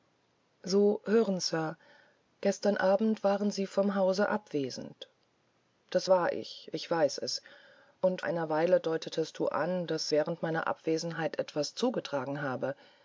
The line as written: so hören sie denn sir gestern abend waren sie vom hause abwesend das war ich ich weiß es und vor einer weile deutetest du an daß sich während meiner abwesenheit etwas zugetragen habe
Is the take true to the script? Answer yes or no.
no